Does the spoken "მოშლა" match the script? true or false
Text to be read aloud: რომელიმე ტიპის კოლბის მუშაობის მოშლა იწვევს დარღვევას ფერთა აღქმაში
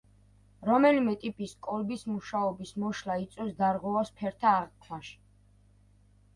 true